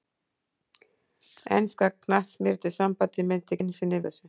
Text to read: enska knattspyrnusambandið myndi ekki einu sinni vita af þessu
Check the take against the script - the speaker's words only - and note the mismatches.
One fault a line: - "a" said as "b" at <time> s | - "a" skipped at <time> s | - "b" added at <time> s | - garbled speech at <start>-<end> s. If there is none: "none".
- "ekki" skipped at 3.6 s
- "vita af" skipped at 4.0 s